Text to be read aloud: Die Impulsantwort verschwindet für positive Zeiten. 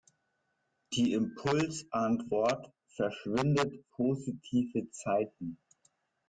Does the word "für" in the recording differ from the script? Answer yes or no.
yes